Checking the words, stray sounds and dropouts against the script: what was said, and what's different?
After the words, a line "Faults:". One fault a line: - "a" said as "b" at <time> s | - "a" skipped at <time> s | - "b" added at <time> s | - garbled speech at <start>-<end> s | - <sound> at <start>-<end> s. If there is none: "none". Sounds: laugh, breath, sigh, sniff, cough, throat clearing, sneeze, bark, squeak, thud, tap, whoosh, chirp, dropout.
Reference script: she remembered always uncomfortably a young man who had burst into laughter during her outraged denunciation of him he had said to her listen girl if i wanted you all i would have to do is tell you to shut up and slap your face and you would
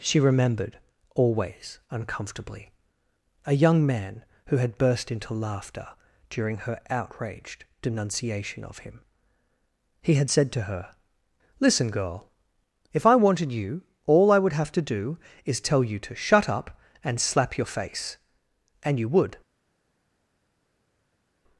she remembered always uncomfortably a young man who had burst into laughter during her outraged denunciation of him he had said to her listen girl if i wanted you all i would have to do is tell you to shut up and slap your face and you would
Faults:
none